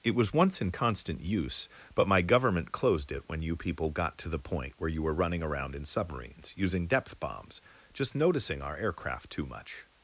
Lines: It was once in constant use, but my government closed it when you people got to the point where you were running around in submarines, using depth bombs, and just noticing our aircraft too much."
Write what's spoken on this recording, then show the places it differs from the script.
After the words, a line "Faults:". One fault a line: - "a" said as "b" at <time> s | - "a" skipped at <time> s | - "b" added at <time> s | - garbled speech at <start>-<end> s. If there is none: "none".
It was once in constant use, but my government closed it when you people got to the point where you were running around in submarines, using depth bombs, just noticing our aircraft too much."
Faults:
- "and" skipped at 7.6 s